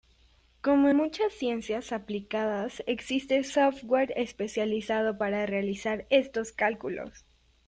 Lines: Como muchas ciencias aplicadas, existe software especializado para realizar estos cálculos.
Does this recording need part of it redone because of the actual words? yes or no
no